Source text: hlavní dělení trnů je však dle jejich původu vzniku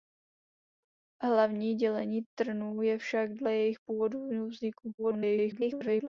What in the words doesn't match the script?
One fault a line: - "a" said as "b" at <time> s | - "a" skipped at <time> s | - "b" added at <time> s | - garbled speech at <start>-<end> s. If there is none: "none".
- garbled speech at 5.0-6.1 s